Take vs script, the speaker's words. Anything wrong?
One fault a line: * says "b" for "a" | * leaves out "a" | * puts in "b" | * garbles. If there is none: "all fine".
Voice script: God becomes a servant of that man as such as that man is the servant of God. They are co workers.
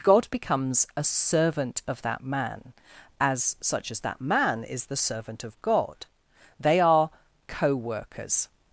all fine